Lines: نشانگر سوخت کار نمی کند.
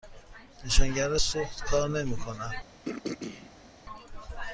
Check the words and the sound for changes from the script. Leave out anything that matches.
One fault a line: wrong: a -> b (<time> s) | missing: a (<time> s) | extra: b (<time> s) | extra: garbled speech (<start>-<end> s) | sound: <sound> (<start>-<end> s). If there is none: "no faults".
sound: throat clearing (2.8-3.7 s)